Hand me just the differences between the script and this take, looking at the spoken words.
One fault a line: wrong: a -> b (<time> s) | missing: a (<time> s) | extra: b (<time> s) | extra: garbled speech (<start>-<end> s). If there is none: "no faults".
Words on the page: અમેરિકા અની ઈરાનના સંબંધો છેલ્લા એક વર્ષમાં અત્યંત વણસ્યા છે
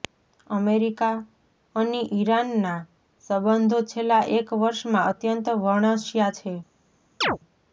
no faults